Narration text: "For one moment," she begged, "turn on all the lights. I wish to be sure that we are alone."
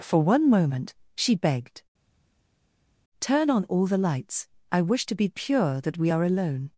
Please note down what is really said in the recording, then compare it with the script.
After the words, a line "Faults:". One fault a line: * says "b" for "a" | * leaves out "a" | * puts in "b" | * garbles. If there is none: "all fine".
"For one moment," she begged, "turn on all the lights. I wish to be pure that we are alone."
Faults:
* says "pure" for "sure"